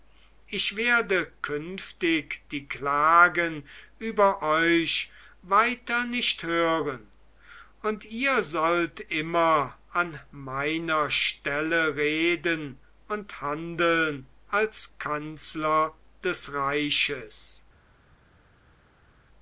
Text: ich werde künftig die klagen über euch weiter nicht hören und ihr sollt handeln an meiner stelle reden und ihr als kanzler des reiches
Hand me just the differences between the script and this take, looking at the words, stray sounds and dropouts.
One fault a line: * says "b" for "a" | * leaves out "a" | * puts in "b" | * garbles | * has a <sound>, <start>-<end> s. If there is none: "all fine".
* says "immer" for "handeln"
* says "handeln" for "ihr"